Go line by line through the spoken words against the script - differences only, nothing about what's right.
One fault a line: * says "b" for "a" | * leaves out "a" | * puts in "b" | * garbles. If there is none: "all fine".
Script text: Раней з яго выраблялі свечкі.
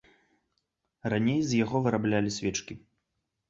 all fine